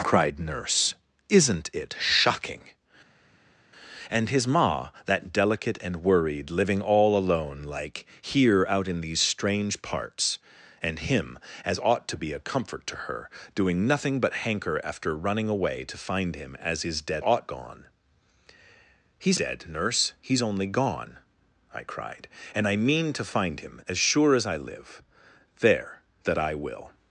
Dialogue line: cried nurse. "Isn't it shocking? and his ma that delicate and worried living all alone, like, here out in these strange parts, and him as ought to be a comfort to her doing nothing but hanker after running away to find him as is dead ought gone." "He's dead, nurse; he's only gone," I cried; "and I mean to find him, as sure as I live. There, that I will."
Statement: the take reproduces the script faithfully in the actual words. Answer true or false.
true